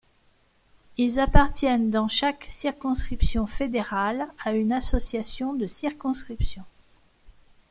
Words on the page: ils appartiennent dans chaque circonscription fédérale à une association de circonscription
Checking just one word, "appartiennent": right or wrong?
right